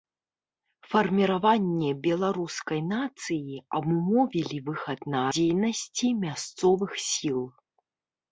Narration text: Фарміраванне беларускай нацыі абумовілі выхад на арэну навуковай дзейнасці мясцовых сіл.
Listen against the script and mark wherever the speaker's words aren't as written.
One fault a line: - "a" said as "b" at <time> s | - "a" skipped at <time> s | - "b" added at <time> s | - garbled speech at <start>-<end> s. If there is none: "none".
- "арэну навуковай" skipped at 5.2 s